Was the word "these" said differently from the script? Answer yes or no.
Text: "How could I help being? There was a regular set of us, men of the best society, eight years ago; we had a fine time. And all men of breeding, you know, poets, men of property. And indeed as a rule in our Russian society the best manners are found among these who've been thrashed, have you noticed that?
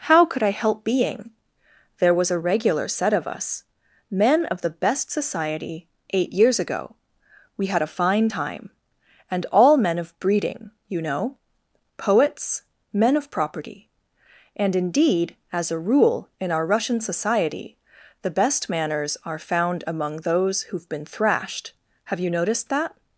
yes